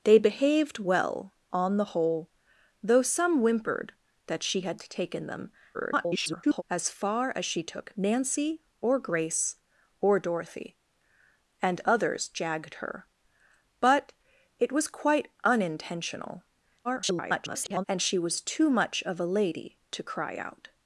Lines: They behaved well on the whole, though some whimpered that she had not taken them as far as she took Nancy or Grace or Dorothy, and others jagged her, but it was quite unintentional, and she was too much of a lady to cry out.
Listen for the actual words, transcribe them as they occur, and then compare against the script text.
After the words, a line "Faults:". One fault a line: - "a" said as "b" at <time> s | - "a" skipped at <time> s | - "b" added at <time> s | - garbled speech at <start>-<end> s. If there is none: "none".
They behaved well on the whole, though some whimpered that she had taken them [garbled] as far as she took Nancy or Grace or Dorothy, and others jagged her, but it was quite unintentional, [garbled] and she was too much of a lady to cry out.
Faults:
- "not" skipped at 4.8 s
- garbled speech at 5.7-6.6 s
- garbled speech at 16.8-17.8 s